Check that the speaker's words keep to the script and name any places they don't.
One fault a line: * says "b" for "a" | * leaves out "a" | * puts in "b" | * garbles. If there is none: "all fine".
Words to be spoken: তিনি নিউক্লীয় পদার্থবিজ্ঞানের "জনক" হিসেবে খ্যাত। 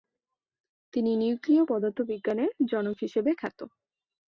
all fine